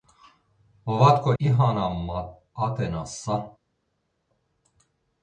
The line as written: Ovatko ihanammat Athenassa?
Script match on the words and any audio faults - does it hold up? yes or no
yes